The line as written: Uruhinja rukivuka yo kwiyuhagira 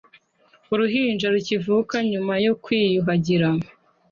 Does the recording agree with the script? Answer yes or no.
no